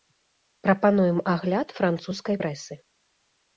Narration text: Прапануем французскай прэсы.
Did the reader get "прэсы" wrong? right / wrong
right